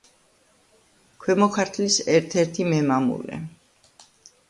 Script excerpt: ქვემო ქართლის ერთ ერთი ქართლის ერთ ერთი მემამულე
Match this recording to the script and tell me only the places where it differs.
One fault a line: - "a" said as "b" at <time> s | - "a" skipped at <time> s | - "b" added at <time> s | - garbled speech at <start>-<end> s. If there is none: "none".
- "ქართლის ერთ ერთი" skipped at 2.7 s